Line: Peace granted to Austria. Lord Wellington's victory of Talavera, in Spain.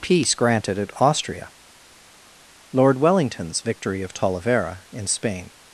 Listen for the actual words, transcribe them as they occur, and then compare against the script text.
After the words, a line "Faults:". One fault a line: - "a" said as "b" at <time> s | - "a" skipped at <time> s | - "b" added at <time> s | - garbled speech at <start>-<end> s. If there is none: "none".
Peace granted at Austria. Lord Wellington's victory of Talavera, in Spain.
Faults:
- "to" said as "at" at 0.8 s